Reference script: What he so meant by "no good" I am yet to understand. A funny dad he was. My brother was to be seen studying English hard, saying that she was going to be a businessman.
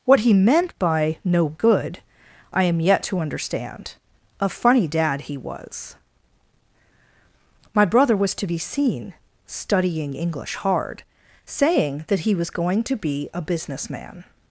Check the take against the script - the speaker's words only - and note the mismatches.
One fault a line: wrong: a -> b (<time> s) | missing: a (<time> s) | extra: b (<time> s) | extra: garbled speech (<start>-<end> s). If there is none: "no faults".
missing: so (0.3 s)
wrong: she -> he (12.2 s)